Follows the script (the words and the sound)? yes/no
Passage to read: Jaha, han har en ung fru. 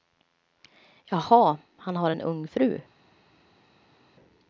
yes